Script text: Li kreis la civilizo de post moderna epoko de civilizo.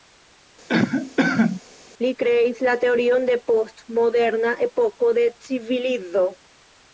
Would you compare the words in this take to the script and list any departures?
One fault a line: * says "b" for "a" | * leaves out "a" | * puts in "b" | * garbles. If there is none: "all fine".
* says "teorion" for "civilizo"